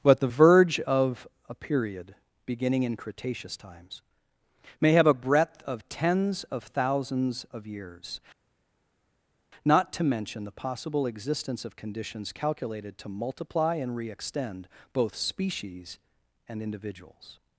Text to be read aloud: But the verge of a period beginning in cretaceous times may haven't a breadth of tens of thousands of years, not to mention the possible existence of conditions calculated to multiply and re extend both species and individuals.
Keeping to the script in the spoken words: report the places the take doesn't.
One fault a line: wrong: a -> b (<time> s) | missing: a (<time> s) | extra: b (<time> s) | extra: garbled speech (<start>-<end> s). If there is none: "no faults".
wrong: haven't -> have (4.9 s)